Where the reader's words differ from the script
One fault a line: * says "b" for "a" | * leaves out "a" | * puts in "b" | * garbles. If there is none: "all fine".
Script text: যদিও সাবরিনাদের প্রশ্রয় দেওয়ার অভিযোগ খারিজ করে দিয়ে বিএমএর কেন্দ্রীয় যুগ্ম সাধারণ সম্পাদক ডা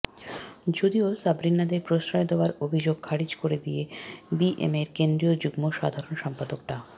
all fine